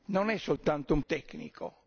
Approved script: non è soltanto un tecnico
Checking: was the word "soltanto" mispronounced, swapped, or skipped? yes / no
no